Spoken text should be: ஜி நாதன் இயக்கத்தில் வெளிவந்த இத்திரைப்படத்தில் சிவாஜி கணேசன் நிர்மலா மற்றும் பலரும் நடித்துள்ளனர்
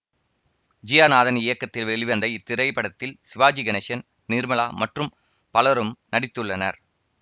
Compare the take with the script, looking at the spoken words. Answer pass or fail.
fail